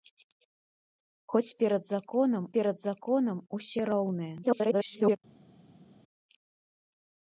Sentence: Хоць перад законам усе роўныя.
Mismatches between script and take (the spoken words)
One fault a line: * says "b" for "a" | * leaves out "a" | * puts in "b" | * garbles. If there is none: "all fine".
* puts in "перад законам"
* garbles